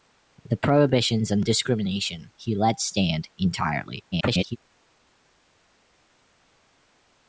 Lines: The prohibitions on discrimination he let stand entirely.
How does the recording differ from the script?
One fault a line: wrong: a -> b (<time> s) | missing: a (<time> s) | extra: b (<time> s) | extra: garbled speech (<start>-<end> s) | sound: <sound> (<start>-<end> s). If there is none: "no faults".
extra: garbled speech (4.1-4.6 s)